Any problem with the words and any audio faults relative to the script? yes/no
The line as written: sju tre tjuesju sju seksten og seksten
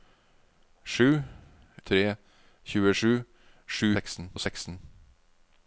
no